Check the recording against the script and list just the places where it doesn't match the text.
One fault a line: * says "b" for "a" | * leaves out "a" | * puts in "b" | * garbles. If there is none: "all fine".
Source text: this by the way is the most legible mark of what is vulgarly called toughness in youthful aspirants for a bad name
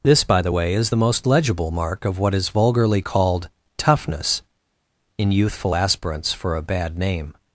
all fine